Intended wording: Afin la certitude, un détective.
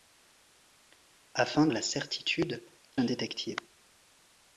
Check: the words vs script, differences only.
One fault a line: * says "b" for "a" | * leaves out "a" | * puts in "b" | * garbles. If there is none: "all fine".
all fine